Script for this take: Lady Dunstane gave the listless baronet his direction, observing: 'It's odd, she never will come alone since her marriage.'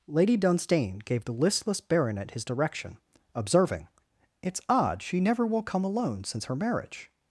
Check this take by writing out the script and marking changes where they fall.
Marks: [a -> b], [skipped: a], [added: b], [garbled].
Lady Dunstane gave the listless baronet his direction, observing: 'It's odd, she never will come alone since her marriage.'